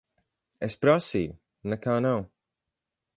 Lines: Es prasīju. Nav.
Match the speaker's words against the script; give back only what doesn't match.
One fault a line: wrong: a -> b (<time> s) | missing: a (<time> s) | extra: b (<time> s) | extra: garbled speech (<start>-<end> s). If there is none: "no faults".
extra: Nekā (1.7 s)